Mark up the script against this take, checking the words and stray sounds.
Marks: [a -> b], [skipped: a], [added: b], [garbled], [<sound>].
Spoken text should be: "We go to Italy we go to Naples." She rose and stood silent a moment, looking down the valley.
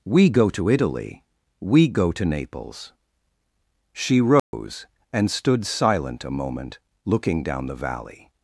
"We go to Italy we go to Naples." She rose [dropout] and stood silent a moment, looking down the valley.